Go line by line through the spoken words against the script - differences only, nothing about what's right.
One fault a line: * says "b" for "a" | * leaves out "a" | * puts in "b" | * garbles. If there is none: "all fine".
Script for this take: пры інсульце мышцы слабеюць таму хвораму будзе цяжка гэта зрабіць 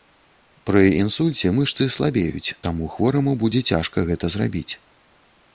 all fine